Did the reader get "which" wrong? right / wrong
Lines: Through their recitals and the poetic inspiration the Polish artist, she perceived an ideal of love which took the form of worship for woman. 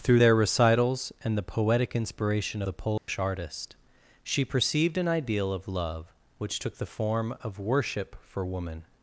right